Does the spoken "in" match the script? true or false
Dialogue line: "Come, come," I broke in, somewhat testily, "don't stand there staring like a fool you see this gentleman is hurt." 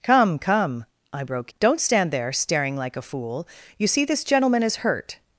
false